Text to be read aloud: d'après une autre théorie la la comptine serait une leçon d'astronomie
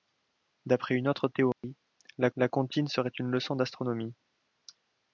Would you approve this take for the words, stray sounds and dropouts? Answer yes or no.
no